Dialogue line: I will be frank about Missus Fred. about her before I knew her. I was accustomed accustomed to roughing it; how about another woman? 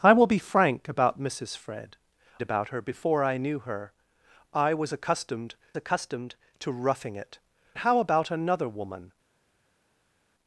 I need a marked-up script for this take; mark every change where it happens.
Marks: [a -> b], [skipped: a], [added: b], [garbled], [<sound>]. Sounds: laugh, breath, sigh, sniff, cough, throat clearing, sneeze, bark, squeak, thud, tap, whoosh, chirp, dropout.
I will be frank about Missus Fred. about her before I knew her. I was accustomed accustomed to roughing it; how about another woman?